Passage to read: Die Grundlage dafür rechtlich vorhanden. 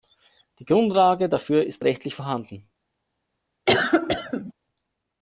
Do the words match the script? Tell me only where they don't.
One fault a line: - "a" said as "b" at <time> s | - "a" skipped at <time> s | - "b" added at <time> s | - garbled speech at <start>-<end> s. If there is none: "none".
- "ist" added at 1.6 s